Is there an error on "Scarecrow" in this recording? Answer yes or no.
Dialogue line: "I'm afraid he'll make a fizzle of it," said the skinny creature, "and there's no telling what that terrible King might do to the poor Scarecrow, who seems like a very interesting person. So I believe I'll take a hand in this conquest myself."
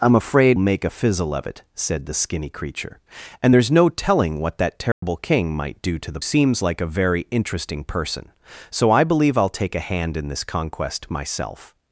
yes